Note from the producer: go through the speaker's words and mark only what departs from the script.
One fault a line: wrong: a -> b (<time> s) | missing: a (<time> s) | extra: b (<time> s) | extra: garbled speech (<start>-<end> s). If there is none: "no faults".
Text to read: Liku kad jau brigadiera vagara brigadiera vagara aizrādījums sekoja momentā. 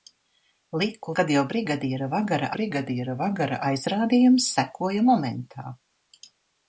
no faults